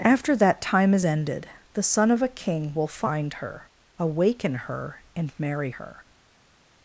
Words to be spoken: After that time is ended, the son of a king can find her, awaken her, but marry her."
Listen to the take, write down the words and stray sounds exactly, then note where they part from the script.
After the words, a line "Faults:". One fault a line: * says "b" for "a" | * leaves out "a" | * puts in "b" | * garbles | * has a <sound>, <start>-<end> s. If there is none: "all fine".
After that time is ended, the son of a king will find her, awaken her, and marry her."
Faults:
* says "will" for "can"
* says "and" for "but"